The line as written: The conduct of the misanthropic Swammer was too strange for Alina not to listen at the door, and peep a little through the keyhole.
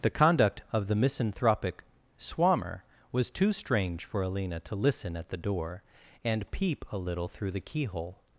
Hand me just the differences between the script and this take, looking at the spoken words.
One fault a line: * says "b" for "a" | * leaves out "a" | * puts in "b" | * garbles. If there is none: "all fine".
* leaves out "not"